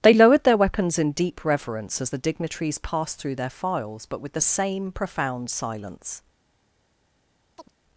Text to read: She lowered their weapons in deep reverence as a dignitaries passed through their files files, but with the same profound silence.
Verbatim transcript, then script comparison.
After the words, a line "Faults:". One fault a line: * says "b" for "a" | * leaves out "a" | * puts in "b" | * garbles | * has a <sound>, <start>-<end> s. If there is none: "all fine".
They lowered their weapons in deep reverence as the dignitaries passed through their files, but with the same profound silence.
Faults:
* says "They" for "She"
* says "the" for "a"
* leaves out "files"
* has a chirp, 7.6-7.7 s